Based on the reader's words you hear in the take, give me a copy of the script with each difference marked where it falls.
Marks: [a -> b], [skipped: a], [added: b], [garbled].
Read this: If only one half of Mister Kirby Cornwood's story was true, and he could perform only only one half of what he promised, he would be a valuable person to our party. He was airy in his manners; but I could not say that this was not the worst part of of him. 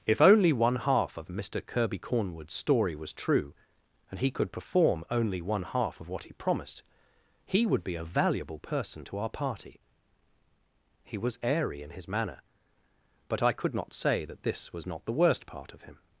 If only one half of Mister Kirby Cornwood's story was true, and he could perform only [skipped: only] one half of what he promised, he would be a valuable person to our party. He was airy in his [manners; -> manner] but I could not say that this was not the worst part of [skipped: of] him.